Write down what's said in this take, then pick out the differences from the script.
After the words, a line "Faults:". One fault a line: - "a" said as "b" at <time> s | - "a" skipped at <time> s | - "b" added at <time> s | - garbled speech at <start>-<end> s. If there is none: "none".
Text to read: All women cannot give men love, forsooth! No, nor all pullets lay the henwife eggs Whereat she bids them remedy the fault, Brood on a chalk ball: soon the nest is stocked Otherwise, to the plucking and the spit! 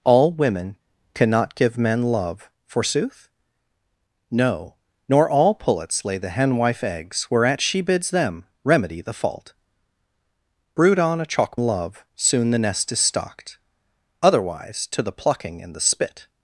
All women cannot give men love, forsooth! No, nor all pullets lay the henwife eggs Whereat she bids them remedy the fault, Brood on a chalk love: soon the nest is stocked Otherwise, to the plucking and the spit!
Faults:
- "ball" said as "love" at 11.6 s